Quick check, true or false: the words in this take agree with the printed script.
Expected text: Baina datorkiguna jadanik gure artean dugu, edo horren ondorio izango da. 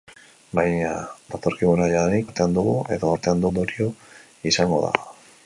false